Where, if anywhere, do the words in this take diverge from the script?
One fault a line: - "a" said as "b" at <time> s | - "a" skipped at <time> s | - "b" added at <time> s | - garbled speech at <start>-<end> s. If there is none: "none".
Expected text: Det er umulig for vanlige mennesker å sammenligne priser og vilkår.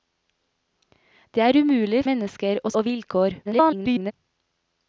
- "for vanlige" skipped at 2.0 s
- "sammenligne priser" skipped at 2.7 s
- garbled speech at 3.4-4.1 s